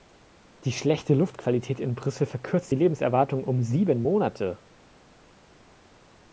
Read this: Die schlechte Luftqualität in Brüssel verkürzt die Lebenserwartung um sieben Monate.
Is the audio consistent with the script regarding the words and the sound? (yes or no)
yes